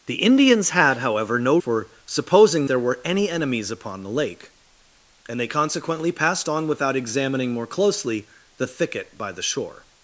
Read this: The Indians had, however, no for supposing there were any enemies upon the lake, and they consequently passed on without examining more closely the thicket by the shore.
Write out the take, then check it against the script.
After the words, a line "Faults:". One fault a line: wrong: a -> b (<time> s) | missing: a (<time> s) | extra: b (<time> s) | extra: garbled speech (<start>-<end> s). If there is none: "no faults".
The Indians had, however, no for supposing there were any enemies upon the lake, and they consequently passed on without examining more closely the thicket by the shore.
Faults:
no faults